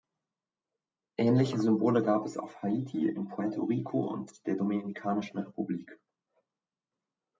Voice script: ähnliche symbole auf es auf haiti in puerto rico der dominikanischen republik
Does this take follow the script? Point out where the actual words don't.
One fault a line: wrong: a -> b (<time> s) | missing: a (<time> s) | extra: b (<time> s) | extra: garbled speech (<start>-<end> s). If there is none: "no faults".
wrong: auf -> gab (2.0 s)
extra: und (4.1 s)